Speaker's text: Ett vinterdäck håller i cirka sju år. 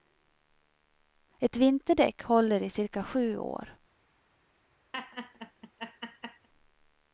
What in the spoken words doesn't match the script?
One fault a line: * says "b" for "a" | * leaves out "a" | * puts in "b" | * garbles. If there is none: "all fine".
all fine